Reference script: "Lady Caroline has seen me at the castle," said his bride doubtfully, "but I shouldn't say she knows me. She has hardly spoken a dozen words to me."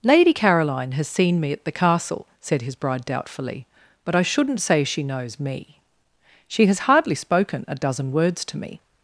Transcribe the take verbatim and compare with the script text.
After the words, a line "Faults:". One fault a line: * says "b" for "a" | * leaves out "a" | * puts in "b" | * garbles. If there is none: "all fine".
"Lady Caroline has seen me at the castle," said his bride doubtfully, "but I shouldn't say she knows me. She has hardly spoken a dozen words to me."
Faults:
all fine